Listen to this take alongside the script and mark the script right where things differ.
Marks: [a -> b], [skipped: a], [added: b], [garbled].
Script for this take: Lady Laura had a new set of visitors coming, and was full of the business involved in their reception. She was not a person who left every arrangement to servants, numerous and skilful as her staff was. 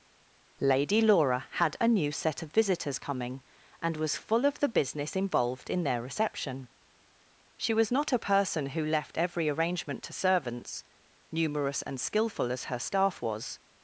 Lady Laura had a new set of visitors coming, and was full of the business involved in their reception. She was not a person who left every arrangement to servants, numerous and skilful as her staff was.